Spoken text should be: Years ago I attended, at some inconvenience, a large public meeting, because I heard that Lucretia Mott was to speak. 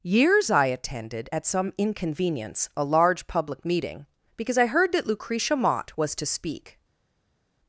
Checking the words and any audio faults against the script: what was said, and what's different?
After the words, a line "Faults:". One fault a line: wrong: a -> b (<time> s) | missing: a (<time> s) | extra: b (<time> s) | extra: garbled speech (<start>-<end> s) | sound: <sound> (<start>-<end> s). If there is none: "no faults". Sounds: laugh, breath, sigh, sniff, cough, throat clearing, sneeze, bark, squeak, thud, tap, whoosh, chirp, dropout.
Years I attended, at some inconvenience, a large public meeting, because I heard that Lucretia Mott was to speak.
Faults:
missing: ago (0.5 s)